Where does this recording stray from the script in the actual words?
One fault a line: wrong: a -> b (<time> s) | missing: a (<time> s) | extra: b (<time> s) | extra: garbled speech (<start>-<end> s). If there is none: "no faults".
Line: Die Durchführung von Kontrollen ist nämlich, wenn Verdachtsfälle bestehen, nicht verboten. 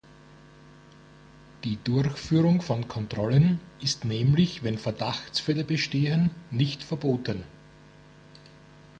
no faults